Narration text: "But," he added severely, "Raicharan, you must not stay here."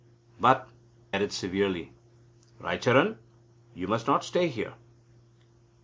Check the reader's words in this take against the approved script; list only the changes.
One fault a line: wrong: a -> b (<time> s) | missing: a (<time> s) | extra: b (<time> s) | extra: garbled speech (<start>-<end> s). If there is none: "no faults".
missing: he (0.7 s)